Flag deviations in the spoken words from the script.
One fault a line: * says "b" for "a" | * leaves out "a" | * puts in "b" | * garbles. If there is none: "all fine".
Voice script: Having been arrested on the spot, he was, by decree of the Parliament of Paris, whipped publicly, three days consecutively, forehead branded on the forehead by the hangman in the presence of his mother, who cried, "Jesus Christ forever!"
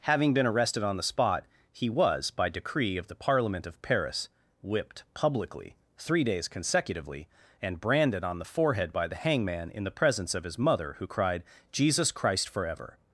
* says "and" for "forehead"